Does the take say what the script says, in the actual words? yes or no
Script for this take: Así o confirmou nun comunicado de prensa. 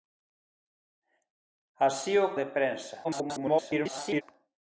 no